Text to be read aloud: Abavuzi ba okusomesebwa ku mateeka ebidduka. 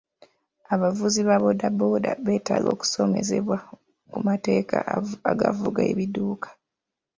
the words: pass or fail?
fail